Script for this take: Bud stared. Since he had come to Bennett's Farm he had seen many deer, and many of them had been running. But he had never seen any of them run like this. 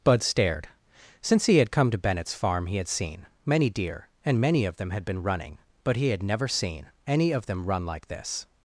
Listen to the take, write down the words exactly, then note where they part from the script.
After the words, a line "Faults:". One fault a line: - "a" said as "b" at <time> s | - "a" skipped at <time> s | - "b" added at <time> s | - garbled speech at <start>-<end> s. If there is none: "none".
Bud stared. Since he had come to Bennett's Farm he had seen many deer, and many of them had been running. But he had never seen any of them run like this.
Faults:
none